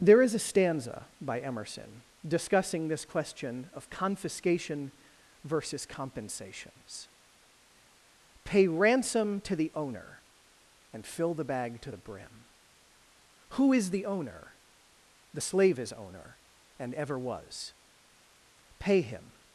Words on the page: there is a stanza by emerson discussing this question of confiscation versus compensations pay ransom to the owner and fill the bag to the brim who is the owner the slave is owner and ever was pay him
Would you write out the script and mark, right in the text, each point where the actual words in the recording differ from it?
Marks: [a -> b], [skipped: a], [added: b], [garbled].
there is a stanza by emerson discussing this question of confiscation versus compensations pay ransom to the owner and fill the bag to the brim who is the owner the slave is owner and ever was pay him